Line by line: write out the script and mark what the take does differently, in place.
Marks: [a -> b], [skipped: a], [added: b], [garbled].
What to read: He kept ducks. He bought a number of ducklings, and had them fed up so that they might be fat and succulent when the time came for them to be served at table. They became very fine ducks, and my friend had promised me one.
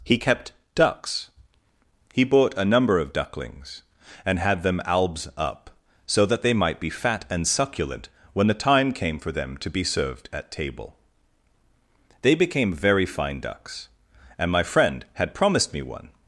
He kept ducks. He bought a number of ducklings, and had them [fed -> albs] up so that they might be fat and succulent when the time came for them to be served at table. They became very fine ducks, and my friend had promised me one.